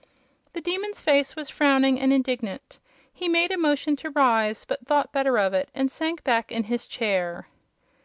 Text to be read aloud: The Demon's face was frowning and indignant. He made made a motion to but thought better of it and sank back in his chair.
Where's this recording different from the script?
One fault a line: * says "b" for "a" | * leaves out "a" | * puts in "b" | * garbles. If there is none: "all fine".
* leaves out "made"
* puts in "rise"